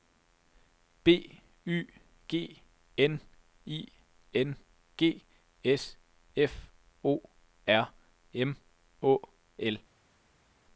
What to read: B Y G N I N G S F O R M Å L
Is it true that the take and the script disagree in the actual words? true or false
false